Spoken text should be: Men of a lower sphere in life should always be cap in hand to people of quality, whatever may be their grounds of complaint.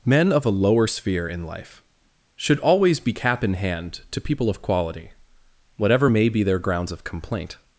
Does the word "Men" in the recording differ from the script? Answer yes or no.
no